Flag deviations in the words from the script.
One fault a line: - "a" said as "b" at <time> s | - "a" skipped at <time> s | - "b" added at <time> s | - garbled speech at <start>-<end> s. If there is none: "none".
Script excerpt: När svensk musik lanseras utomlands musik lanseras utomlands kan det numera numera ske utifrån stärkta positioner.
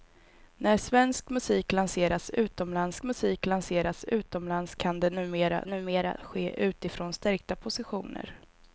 none